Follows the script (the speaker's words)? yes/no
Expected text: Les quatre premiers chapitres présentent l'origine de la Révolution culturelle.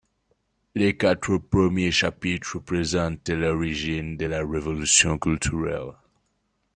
yes